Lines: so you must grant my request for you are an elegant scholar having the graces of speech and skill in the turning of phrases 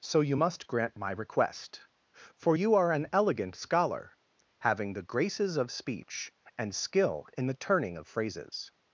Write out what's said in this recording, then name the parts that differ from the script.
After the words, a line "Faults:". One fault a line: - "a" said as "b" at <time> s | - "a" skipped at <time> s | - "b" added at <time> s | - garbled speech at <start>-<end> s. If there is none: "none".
so you must grant my request for you are an elegant scholar having the graces of speech and skill in the turning of phrases
Faults:
none